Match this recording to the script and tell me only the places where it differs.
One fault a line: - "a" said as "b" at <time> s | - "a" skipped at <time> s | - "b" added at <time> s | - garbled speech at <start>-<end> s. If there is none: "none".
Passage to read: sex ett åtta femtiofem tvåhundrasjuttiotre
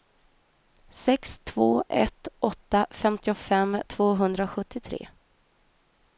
- "två" added at 1.4 s